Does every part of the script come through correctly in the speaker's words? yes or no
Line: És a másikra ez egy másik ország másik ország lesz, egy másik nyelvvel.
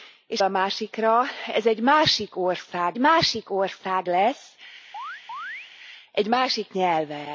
yes